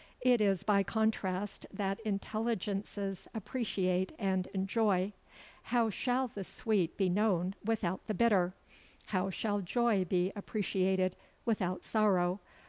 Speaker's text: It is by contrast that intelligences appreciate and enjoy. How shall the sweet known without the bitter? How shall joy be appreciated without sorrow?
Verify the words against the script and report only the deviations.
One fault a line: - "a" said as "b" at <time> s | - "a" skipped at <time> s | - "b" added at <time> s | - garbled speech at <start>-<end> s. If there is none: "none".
- "be" added at 7.0 s